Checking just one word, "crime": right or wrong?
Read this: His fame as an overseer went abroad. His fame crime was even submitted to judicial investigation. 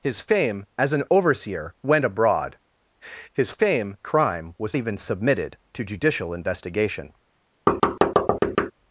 right